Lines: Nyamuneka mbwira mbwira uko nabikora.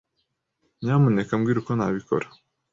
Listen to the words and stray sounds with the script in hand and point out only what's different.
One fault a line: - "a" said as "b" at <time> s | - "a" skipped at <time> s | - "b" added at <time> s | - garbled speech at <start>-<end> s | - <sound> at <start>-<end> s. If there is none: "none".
- "mbwira" skipped at 1.6 s